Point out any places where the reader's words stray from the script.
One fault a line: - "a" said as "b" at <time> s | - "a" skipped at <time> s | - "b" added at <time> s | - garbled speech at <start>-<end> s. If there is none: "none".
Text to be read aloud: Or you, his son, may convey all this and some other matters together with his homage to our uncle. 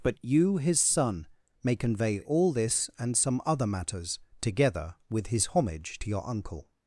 - "Or" said as "But" at 0.0 s
- "our" said as "your" at 6.1 s